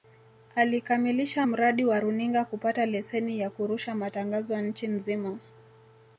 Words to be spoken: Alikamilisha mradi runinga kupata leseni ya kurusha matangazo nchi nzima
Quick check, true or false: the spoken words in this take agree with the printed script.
false